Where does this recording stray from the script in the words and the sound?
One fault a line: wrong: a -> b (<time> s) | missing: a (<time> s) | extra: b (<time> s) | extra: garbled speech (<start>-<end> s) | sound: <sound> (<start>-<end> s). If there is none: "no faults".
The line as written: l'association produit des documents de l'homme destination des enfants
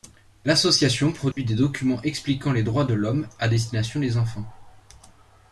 sound: dropout (1.3-1.4 s)
extra: expliquant les droits (2.0 s)
extra: à (3.4 s)